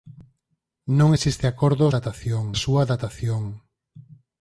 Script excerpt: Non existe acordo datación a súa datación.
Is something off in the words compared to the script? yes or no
no